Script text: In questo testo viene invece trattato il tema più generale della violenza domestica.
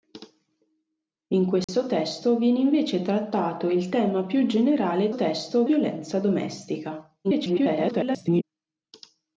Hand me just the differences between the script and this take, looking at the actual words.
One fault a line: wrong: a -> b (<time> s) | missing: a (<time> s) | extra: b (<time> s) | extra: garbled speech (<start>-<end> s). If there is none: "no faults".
wrong: della -> testo (5.1 s)
extra: garbled speech (7.2-8.4 s)